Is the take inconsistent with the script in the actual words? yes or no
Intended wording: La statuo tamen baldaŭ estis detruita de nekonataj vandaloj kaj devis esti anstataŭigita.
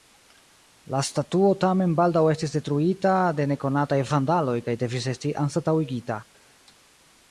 no